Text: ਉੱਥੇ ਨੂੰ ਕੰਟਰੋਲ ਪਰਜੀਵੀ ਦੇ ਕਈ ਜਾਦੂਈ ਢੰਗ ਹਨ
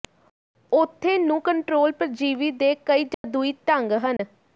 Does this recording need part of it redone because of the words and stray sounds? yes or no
yes